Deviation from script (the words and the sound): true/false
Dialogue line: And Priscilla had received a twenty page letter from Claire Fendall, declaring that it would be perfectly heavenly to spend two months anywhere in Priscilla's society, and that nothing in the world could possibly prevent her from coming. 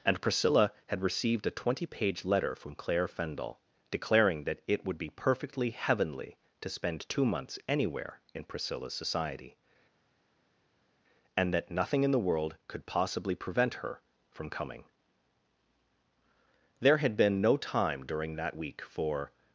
true